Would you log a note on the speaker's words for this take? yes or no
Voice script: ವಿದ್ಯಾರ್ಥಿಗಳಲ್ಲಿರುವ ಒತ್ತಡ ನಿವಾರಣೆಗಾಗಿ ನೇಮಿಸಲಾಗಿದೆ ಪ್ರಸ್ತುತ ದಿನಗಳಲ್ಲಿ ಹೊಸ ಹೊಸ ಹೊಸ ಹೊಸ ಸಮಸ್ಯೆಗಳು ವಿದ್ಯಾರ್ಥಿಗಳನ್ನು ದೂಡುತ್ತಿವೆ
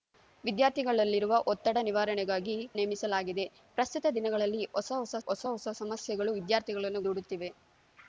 no